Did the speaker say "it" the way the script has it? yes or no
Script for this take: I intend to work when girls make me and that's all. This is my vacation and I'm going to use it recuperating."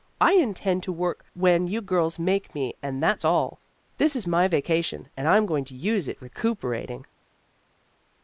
yes